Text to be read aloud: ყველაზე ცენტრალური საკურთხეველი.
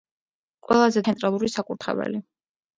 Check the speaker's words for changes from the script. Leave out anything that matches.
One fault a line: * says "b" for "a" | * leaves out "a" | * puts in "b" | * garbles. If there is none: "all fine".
all fine